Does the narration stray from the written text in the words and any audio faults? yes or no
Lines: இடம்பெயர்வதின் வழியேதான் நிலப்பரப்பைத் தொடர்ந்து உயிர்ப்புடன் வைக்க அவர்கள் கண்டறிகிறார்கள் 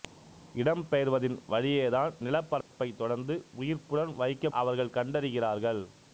yes